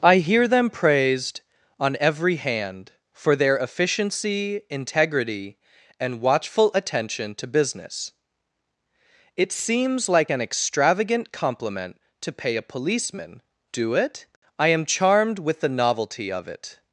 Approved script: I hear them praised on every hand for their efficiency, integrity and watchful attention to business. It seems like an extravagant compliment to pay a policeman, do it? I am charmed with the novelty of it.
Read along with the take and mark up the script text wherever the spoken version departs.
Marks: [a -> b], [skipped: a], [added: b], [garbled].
I hear them praised on every hand for their efficiency, integrity and watchful attention to business. It seems like an extravagant compliment to pay a policeman, do it? I am charmed with the novelty of it.